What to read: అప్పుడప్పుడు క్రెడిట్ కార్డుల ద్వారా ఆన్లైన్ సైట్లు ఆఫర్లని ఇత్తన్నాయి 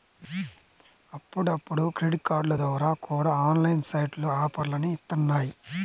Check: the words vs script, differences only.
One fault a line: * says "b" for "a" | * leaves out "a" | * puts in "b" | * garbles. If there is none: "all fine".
* puts in "కూడా"